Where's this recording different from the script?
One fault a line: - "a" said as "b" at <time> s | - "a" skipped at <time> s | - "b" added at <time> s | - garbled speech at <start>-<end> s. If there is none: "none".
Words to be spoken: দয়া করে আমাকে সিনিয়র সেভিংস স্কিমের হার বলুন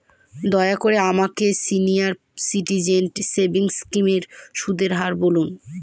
- "সিটিজেন" added at 2.4 s
- "সুদের" added at 4.5 s